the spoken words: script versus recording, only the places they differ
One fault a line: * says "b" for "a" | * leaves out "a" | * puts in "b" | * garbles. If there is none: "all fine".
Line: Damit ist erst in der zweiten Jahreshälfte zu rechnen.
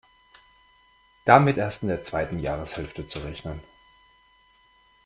* leaves out "ist"